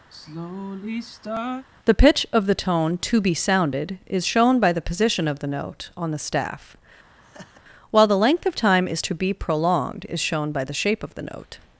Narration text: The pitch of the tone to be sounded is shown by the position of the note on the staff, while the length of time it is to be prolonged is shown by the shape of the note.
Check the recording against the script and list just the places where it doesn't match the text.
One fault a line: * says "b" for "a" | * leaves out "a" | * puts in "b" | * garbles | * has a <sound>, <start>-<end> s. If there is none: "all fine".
* has a sigh, 0.1-1.7 s
* has a laugh, 7.2-7.6 s
* leaves out "it"